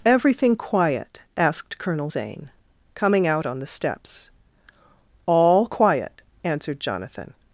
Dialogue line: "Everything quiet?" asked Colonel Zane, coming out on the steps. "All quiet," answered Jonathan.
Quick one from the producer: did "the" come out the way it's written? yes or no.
yes